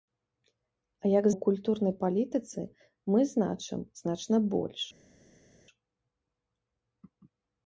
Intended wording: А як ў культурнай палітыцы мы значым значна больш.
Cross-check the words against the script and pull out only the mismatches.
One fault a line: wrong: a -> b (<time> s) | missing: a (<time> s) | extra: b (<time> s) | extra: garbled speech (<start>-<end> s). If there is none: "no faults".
no faults